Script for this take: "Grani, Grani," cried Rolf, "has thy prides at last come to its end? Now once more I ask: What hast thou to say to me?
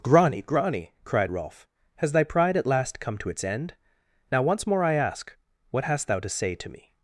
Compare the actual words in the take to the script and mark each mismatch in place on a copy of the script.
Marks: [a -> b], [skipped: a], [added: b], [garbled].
"Grani, Grani," cried Rolf, "has thy [prides -> pride] at last come to its end? Now once more I ask: What hast thou to say to me?